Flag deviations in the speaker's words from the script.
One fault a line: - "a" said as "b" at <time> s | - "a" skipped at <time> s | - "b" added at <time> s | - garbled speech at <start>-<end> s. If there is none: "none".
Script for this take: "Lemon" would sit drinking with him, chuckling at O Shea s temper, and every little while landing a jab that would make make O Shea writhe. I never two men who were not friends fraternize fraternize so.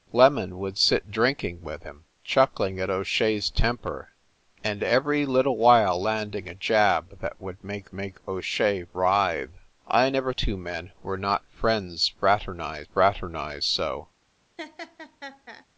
none